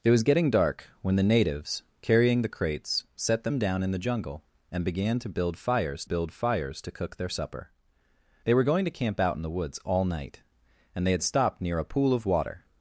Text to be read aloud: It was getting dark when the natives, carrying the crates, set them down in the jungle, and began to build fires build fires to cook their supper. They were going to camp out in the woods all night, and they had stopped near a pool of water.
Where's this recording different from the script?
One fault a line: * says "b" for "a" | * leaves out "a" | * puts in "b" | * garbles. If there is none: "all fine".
all fine